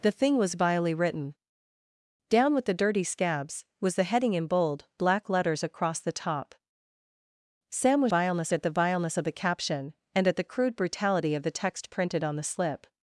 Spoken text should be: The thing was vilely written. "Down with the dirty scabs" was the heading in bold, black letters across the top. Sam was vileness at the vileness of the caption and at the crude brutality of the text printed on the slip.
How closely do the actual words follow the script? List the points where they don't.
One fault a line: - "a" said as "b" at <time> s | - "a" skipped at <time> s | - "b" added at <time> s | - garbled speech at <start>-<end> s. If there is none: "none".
none